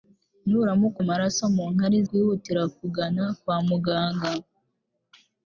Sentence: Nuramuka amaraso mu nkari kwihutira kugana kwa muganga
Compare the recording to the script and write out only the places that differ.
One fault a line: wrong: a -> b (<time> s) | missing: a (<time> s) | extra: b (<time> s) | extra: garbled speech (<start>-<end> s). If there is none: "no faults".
no faults